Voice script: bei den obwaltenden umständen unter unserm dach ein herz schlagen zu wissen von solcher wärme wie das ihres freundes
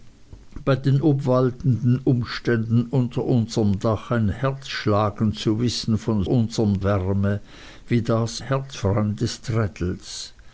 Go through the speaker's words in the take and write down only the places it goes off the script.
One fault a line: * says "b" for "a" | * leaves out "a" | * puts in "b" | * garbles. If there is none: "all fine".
* says "unserm" for "solcher"
* says "herz" for "ihres"